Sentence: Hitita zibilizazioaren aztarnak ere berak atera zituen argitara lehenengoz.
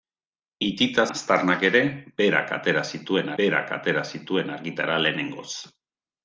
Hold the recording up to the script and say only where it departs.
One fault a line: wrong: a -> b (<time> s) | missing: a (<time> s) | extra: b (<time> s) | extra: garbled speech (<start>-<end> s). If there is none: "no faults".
missing: zibilizazioaren (1.0 s)
extra: berak atera zituen (3.4 s)